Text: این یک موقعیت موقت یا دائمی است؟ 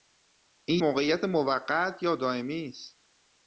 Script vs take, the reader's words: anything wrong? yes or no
yes